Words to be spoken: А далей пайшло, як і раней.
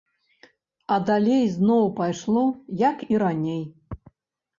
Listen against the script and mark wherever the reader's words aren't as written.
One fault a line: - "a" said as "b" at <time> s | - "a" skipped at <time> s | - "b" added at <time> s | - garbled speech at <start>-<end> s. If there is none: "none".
- "зноў" added at 1.6 s